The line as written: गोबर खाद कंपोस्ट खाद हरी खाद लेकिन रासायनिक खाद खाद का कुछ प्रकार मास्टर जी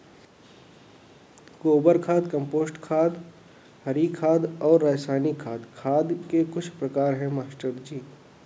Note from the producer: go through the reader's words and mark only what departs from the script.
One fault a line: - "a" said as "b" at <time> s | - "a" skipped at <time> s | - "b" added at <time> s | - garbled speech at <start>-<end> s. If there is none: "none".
- "लेकिन" said as "और" at 4.6 s
- "का" said as "के" at 6.3 s
- "है" added at 7.1 s